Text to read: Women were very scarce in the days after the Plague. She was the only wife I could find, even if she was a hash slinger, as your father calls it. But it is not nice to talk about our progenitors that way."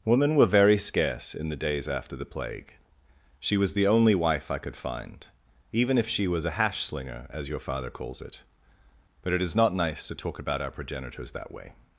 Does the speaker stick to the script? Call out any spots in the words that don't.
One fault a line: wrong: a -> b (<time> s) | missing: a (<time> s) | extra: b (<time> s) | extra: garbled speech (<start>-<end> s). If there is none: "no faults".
no faults